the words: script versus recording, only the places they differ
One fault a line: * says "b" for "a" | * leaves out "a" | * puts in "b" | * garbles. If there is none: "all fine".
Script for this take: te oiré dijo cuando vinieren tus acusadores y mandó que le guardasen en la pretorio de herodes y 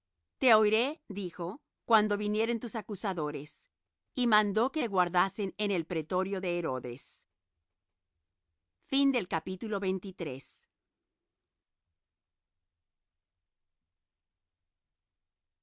* says "el" for "la"